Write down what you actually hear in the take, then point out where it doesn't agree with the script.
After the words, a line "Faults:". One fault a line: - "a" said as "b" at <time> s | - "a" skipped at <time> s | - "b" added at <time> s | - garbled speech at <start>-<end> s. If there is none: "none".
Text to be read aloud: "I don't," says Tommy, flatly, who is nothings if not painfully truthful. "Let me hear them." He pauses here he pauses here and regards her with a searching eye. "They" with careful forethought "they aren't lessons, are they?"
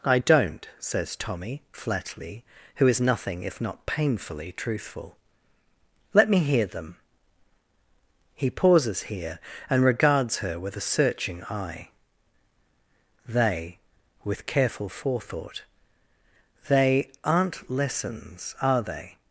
"I don't," says Tommy, flatly, who is nothing if not painfully truthful. "Let me hear them." He pauses here and regards her with a searching eye. "They" with careful forethought "they aren't lessons, are they?"
Faults:
- "nothings" said as "nothing" at 3.0 s
- "he pauses here" skipped at 9.4 s